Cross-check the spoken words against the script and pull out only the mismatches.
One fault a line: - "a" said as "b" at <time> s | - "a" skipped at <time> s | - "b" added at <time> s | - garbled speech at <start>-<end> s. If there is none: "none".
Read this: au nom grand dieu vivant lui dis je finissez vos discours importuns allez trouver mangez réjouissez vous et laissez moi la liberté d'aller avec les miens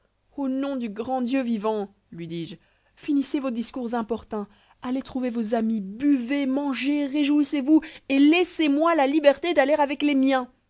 - "du" added at 0.8 s
- "vos amis buvez" added at 5.3 s